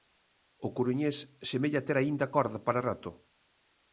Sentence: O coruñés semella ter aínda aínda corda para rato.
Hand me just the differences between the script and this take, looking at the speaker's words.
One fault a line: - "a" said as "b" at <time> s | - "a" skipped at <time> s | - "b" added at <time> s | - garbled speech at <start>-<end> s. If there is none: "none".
- "aínda" skipped at 2.3 s